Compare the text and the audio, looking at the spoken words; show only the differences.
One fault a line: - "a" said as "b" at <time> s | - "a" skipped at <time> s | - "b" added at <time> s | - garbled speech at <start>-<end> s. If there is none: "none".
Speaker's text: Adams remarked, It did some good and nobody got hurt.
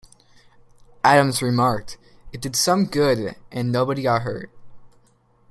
none